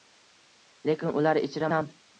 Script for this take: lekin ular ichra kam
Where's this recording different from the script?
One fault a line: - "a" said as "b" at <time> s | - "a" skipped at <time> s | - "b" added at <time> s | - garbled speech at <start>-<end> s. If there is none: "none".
none